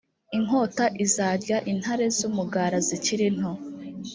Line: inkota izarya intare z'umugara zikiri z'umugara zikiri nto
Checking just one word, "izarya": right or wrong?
right